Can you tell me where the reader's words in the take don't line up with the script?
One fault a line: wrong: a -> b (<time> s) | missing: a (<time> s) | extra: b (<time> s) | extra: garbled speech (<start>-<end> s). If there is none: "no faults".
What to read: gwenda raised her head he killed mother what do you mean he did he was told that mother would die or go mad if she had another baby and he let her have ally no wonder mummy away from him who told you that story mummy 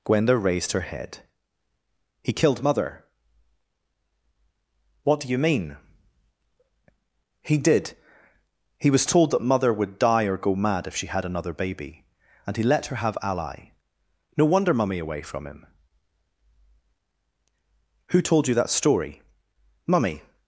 no faults